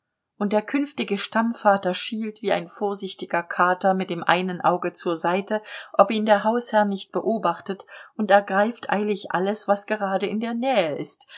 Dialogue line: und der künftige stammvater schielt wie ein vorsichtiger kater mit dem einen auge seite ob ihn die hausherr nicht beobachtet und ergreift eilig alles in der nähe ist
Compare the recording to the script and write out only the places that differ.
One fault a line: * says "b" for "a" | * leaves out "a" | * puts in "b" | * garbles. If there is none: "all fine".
* puts in "zur"
* says "der" for "die"
* puts in "was gerade"